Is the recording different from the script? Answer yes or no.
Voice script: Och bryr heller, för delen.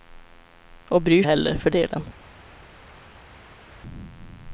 no